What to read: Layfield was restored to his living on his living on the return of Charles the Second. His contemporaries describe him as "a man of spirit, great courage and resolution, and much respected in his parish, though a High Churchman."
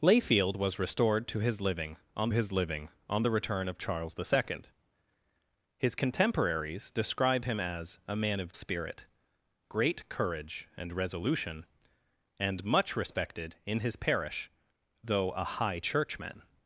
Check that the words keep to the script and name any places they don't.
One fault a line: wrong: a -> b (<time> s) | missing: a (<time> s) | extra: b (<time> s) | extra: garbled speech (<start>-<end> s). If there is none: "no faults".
no faults